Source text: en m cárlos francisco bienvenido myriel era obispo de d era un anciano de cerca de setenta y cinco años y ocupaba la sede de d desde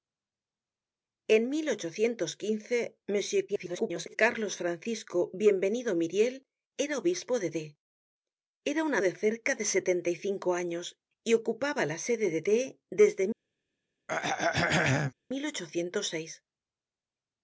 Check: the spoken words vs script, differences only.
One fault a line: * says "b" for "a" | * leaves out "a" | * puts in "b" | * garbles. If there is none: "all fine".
* garbles
* leaves out "anciano"